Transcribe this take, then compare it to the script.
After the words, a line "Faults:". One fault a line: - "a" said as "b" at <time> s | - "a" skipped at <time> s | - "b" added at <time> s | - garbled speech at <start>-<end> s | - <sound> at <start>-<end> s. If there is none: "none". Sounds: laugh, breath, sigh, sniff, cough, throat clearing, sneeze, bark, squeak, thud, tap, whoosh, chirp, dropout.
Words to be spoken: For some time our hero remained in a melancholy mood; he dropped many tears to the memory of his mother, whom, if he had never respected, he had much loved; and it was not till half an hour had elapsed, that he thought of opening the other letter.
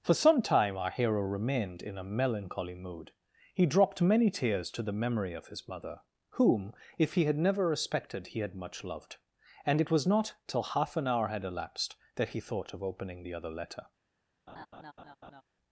For some time our hero remained in a melancholy mood; he dropped many tears to the memory of his mother, whom, if he had never respected, he had much loved; and it was not till half an hour had elapsed, that he thought of opening the other letter.
Faults:
- laugh at 14.5-15.4 s